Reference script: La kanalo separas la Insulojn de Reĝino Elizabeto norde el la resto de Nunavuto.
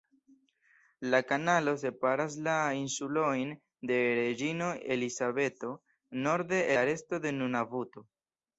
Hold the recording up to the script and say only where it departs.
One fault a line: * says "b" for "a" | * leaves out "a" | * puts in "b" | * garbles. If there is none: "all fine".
* leaves out "el"